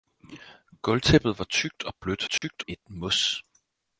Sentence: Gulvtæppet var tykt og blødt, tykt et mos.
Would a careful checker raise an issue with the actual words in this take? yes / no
no